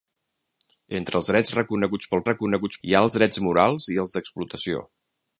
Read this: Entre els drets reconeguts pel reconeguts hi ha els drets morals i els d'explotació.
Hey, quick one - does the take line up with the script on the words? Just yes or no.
yes